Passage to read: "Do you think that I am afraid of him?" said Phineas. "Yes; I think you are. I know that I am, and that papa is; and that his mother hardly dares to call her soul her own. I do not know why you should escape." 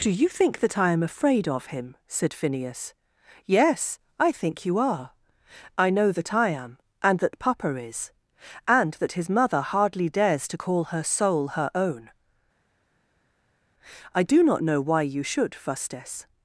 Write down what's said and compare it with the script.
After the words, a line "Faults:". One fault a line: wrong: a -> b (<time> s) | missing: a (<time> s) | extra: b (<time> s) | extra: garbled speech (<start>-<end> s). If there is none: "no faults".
"Do you think that I am afraid of him?" said Phineas. "Yes; I think you are. I know that I am, and that papa is; and that his mother hardly dares to call her soul her own. I do not know why you should fustes."
Faults:
wrong: escape -> fustes (15.5 s)